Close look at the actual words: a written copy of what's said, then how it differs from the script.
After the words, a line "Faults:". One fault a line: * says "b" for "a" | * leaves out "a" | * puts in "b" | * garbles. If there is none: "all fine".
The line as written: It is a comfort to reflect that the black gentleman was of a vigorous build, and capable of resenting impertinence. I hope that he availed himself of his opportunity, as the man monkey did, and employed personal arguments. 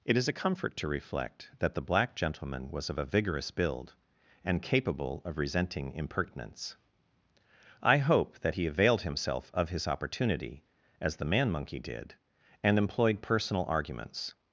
It is a comfort to reflect that the black gentleman was of a vigorous build, and capable of resenting impertinence. I hope that he availed himself of his opportunity, as the man monkey did, and employed personal arguments.
Faults:
all fine